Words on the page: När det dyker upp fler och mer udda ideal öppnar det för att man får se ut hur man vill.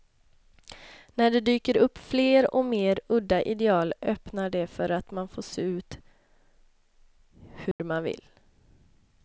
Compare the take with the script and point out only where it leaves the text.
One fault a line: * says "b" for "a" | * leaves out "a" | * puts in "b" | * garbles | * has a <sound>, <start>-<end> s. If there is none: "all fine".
* has a dropout, 7.7-7.8 s